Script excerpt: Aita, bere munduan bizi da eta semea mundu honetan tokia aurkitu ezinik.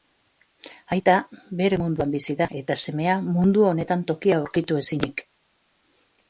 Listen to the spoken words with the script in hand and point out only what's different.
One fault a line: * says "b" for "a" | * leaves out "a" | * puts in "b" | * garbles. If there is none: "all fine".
all fine